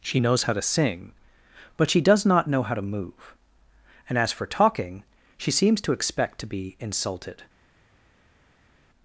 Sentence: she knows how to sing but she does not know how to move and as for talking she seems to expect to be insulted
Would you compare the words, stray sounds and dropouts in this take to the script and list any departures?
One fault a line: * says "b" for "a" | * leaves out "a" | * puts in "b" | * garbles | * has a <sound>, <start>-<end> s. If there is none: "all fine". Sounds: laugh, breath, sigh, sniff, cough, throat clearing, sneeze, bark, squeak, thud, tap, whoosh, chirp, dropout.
all fine